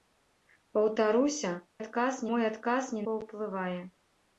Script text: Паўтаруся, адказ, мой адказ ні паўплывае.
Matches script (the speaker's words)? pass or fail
pass